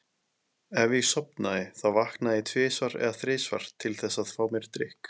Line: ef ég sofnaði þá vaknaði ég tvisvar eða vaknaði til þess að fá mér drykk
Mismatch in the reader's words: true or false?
true